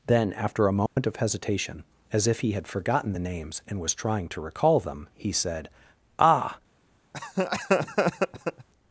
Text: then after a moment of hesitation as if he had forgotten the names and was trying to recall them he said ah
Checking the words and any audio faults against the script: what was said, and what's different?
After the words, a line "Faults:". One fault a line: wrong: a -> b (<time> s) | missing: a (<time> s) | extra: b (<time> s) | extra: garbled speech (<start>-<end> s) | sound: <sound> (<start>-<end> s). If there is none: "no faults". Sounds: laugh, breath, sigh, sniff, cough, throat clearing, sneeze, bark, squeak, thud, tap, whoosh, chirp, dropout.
then after a moment of hesitation as if he had forgotten the names and was trying to recall them he said ah
Faults:
sound: dropout (0.9-1.0 s)
sound: laugh (7.1-8.7 s)